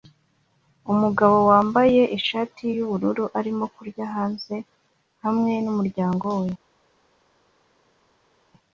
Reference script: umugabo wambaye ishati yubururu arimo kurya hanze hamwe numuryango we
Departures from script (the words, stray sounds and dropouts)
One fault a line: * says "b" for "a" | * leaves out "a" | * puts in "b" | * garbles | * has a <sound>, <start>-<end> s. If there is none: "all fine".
all fine